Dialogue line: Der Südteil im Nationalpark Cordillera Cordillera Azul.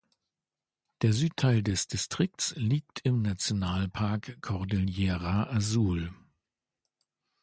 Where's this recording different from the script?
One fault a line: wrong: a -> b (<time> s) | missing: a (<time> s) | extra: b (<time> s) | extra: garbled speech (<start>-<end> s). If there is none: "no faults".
extra: des Distrikts liegt (1.6 s)
missing: Cordillera (5.5 s)